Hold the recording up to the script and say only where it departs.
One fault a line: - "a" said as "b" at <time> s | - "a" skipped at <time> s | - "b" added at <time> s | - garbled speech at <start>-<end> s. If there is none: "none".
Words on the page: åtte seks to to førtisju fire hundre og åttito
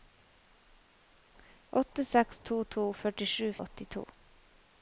- "fire hundre" skipped at 3.5 s